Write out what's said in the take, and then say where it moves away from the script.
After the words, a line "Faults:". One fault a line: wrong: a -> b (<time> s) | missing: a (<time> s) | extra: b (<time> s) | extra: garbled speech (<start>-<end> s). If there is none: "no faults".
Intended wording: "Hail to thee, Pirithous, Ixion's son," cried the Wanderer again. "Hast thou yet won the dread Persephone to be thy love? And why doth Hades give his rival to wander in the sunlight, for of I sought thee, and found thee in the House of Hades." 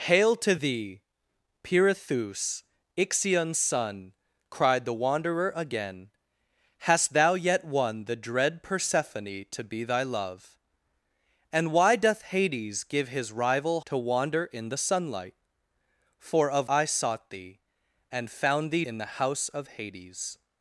"Hail to thee, Pirithous, Ixion's son," cried the Wanderer again. "Hast thou yet won the dread Persephone to be thy love? And why doth Hades give his rival to wander in the sunlight, for of I sought thee, and found thee in the House of Hades."
Faults:
no faults